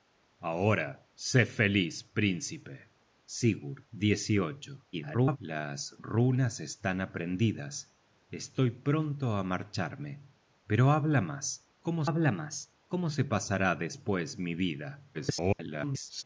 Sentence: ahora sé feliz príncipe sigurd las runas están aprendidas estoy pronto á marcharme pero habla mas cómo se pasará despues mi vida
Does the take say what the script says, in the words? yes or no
no